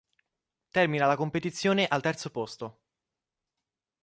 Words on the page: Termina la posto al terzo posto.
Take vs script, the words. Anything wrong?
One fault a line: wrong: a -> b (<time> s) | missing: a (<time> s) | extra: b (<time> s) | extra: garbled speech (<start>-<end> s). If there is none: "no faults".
wrong: posto -> competizione (1.1 s)